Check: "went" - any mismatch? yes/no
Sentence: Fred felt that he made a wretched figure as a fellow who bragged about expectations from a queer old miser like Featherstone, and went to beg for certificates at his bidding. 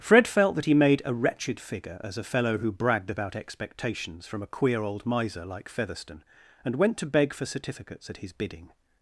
no